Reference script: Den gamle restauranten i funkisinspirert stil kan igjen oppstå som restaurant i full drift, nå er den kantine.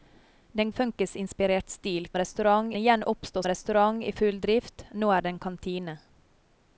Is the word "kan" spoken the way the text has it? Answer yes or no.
no